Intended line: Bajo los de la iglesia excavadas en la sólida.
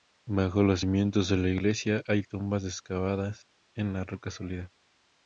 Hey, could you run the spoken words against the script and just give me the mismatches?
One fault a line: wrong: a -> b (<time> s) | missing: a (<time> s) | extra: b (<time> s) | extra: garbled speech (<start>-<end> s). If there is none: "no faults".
extra: cimientos (0.8 s)
extra: hay tumbas (2.0 s)
extra: roca (4.0 s)